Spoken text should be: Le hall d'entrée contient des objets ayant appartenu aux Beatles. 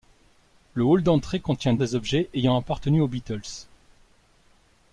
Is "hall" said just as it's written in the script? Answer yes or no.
yes